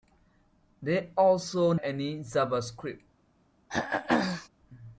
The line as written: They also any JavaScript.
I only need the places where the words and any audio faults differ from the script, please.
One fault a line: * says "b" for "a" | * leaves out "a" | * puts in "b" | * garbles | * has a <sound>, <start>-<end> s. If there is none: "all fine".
* has a throat clearing, 3.7-4.5 s